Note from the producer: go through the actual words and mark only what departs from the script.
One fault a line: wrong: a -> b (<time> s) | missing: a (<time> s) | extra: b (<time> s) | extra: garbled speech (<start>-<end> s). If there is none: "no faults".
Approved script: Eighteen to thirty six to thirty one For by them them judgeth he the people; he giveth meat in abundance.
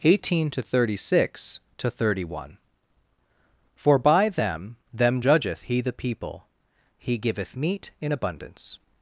no faults